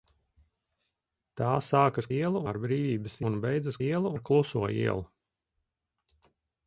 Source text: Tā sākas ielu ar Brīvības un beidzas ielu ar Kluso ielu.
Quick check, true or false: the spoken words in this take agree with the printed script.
true